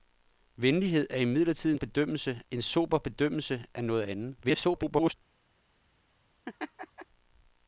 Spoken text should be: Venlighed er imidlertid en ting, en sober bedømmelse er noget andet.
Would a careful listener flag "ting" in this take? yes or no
yes